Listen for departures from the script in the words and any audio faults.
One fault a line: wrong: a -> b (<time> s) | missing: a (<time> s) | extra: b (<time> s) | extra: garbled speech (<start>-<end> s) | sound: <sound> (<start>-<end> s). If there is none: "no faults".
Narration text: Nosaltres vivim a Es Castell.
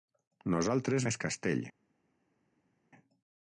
missing: vivim (1.1 s)